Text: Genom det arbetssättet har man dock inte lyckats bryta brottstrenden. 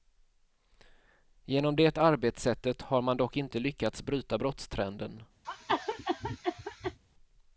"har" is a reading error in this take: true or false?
false